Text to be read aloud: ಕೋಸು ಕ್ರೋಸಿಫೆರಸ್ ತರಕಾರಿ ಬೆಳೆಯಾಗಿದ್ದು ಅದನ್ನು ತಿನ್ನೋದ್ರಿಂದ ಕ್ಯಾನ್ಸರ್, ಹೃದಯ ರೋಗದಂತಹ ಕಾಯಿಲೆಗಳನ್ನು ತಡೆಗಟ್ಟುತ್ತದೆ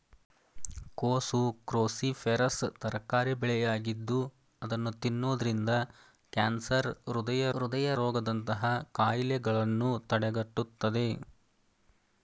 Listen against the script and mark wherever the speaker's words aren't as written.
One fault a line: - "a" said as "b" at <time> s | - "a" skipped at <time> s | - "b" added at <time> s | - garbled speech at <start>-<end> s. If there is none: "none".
- "ಹೃದಯ" added at 7.6 s